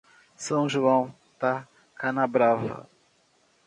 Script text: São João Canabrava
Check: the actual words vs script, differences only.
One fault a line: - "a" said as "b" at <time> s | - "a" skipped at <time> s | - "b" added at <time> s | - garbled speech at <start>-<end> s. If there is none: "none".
- "da" added at 1.4 s